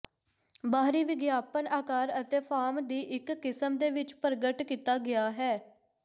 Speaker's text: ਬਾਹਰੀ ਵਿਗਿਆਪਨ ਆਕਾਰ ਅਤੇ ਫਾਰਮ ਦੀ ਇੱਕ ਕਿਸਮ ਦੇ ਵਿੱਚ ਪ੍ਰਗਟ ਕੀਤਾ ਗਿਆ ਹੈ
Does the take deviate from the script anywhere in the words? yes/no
no